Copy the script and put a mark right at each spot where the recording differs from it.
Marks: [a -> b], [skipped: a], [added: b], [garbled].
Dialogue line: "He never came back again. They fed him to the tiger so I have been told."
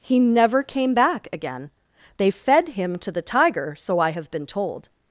"He never came back again. They fed him to the tiger so I have been told."